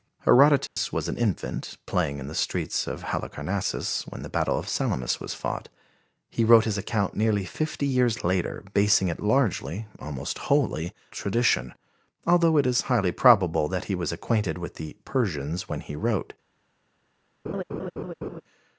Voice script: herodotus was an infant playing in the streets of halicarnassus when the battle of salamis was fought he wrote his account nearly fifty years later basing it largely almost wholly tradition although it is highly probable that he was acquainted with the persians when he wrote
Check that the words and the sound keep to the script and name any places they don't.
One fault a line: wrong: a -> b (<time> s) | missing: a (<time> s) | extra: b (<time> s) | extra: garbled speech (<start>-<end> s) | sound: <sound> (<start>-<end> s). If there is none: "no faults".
sound: dropout (0.7-0.8 s)
sound: laugh (17.4-18.4 s)